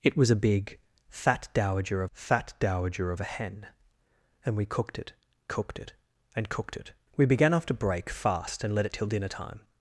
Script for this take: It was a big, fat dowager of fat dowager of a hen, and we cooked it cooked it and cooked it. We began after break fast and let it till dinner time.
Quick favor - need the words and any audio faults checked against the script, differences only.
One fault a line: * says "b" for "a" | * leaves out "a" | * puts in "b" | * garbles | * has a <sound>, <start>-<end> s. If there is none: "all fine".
all fine